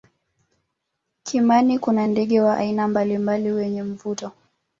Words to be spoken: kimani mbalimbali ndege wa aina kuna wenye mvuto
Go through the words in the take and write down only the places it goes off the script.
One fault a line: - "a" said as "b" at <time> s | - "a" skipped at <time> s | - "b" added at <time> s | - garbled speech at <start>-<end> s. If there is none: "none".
- "mbalimbali" said as "kuna" at 1.8 s
- "kuna" said as "mbalimbali" at 2.9 s